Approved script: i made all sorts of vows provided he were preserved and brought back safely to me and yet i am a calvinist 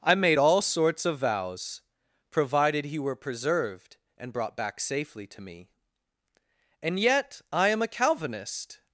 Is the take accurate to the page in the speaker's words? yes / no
yes